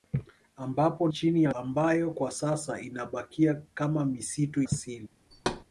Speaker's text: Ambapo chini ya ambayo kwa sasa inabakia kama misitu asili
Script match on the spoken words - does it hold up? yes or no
yes